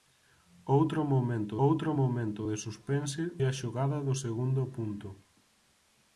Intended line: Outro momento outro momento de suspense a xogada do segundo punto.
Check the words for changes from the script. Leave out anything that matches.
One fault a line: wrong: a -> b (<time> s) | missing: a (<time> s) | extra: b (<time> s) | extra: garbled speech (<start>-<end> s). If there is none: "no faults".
no faults